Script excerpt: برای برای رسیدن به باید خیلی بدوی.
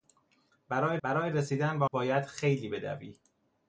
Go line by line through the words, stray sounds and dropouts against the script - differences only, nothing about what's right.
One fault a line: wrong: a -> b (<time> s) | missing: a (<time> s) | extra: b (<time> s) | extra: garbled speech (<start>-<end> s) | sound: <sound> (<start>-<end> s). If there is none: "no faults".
no faults